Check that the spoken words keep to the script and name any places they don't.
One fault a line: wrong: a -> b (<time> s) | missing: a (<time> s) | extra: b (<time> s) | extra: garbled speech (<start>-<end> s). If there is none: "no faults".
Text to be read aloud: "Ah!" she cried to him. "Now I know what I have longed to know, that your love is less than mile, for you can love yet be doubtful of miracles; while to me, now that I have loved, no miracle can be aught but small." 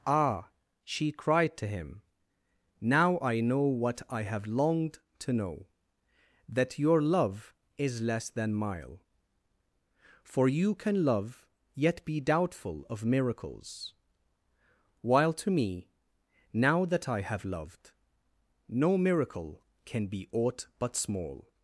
no faults